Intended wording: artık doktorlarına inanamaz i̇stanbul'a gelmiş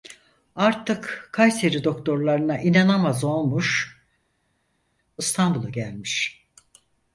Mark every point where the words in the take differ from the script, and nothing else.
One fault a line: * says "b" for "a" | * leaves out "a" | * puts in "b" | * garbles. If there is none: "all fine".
* puts in "kayseri"
* puts in "olmuş"